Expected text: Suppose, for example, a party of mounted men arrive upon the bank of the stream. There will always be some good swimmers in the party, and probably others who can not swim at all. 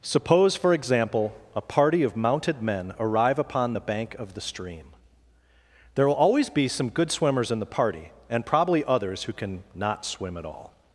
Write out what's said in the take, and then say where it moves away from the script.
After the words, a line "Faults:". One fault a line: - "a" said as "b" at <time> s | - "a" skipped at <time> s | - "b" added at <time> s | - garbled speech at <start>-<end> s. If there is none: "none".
Suppose, for example, a party of mounted men arrive upon the bank of the stream. There will always be some good swimmers in the party, and probably others who can not swim at all.
Faults:
none